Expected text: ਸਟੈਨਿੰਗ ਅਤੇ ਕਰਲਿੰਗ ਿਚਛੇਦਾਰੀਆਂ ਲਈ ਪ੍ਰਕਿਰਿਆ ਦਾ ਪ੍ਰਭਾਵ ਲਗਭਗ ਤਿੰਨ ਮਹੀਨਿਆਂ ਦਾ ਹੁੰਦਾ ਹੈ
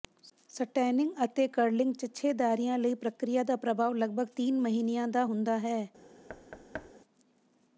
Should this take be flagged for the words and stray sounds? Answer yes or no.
yes